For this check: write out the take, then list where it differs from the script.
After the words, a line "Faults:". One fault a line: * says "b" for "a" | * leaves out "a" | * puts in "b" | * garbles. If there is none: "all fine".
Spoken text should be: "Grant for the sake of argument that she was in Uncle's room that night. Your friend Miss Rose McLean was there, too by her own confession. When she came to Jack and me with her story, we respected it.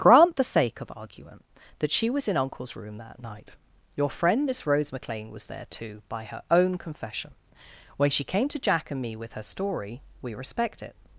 "Grant the sake of argument that she was in Uncle's room that night. Your friend Miss Rose McLean was there, too by her own confession. When she came to Jack and me with her story, we respect it.
Faults:
* leaves out "for"
* says "respect" for "respected"